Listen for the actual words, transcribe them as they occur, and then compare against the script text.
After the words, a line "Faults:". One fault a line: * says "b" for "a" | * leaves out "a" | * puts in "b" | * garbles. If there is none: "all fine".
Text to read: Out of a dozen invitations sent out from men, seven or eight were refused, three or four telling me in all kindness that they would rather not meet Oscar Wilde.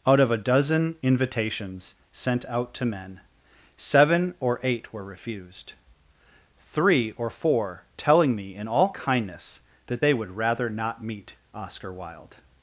Out of a dozen invitations sent out to men, seven or eight were refused, three or four telling me in all kindness that they would rather not meet Oscar Wilde.
Faults:
* says "to" for "from"